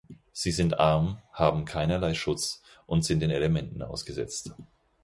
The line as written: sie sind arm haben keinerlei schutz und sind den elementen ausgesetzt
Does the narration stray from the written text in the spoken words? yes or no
no